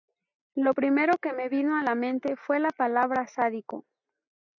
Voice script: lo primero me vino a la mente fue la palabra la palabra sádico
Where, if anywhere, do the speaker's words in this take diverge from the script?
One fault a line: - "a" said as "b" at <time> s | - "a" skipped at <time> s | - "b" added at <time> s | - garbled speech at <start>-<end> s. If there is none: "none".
- "que" added at 1.2 s
- "la palabra" skipped at 3.3 s